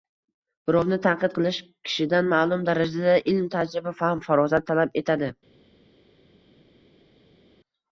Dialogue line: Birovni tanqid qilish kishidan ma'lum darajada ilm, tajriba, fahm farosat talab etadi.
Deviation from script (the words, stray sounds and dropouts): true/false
false